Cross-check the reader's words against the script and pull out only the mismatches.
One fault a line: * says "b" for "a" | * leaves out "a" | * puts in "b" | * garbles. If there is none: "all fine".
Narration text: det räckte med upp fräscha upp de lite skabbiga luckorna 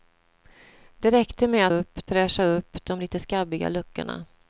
all fine